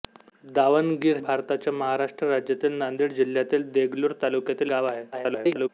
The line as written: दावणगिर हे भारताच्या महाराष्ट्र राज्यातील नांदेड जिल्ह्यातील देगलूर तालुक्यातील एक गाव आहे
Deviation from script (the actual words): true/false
true